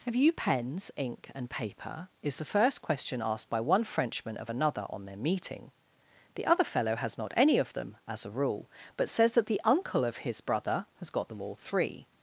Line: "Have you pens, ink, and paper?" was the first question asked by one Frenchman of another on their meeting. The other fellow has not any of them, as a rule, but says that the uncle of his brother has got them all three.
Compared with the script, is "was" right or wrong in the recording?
wrong